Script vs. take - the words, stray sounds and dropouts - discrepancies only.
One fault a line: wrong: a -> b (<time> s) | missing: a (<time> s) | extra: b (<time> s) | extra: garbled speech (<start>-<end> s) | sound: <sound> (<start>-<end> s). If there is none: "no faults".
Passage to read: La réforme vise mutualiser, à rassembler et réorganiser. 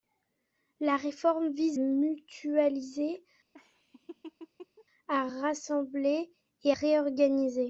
sound: laugh (3.5-4.8 s)